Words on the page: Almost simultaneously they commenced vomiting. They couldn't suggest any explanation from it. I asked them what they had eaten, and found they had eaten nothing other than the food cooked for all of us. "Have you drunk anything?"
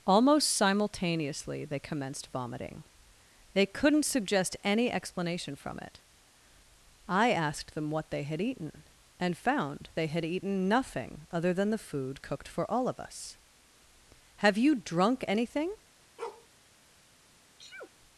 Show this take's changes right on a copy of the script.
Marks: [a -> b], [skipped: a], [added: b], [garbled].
Almost simultaneously they commenced vomiting. They couldn't suggest any explanation from it. I asked them what they had eaten, and found they had eaten nothing other than the food cooked for all of us. "Have you drunk anything?"